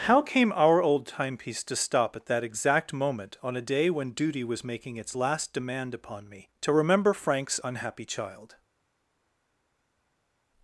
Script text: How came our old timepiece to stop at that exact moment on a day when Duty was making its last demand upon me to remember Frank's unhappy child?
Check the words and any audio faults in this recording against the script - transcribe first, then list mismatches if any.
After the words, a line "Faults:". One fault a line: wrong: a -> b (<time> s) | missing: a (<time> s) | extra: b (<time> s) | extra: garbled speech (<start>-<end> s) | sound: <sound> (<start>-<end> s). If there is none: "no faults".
How came our old timepiece to stop at that exact moment on a day when Duty was making its last demand upon me to remember Frank's unhappy child?
Faults:
no faults